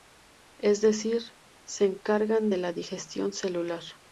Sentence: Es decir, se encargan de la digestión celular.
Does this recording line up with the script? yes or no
yes